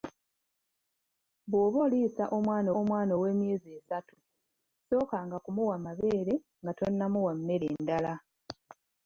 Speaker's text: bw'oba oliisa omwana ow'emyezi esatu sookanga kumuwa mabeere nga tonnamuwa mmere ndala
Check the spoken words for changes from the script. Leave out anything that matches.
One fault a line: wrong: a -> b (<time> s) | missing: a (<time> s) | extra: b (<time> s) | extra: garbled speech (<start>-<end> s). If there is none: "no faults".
extra: omwana (2.8 s)